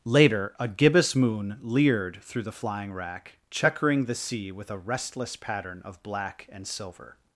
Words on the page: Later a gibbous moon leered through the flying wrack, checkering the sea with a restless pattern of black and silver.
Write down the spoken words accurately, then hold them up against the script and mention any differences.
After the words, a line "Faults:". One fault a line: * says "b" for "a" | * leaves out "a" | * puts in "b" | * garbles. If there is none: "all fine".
Later a gibbous moon leered through the flying wrack, checkering the sea with a restless pattern of black and silver.
Faults:
all fine